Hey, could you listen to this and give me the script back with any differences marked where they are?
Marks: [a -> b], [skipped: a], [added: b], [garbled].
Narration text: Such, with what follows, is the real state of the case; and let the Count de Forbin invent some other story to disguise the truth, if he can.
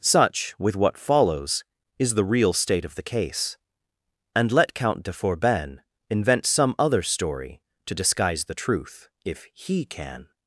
Such, with what follows, is the real state of the case; and let [skipped: the] Count de Forbin invent some other story to disguise the truth, if he can.